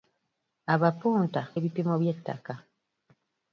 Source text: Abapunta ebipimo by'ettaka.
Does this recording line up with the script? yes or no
yes